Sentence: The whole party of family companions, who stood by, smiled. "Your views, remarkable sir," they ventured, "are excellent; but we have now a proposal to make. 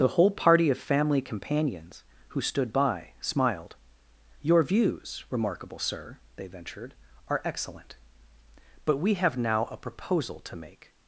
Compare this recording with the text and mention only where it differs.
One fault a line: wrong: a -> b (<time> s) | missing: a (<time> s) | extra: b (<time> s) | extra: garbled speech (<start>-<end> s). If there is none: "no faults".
no faults